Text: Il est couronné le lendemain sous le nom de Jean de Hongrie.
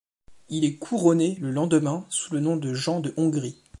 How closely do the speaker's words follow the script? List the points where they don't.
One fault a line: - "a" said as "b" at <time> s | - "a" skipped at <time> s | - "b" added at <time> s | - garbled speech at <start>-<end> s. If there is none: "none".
none